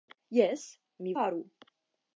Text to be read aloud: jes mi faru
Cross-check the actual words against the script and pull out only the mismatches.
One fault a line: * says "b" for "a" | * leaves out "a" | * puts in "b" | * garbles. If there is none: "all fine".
all fine